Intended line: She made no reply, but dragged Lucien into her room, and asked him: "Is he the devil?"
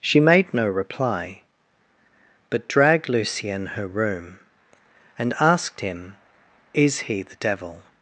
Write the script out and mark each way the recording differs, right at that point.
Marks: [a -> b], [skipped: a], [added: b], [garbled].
She made no reply, but dragged Lucien [skipped: into] her room, and asked him: "Is he the devil?"